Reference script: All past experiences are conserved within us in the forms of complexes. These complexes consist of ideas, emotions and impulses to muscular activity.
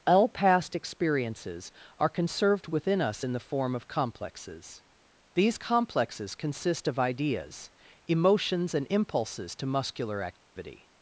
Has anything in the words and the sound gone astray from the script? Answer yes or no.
yes